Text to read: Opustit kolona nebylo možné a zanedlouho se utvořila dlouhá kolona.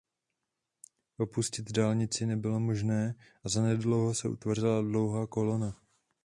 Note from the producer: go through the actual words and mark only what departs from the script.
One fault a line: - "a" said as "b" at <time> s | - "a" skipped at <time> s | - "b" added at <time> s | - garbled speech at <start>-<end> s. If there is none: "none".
- "kolona" said as "dálnici" at 1.7 s